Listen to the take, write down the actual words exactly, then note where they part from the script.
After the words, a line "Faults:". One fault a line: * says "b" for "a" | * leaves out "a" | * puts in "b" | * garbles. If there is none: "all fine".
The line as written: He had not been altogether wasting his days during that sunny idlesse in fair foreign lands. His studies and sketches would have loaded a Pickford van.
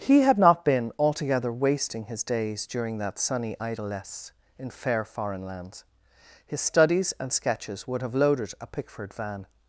He had not been altogether wasting his days during that sunny idlesse in fair foreign lands. His studies and sketches would have loaded a Pickford van.
Faults:
all fine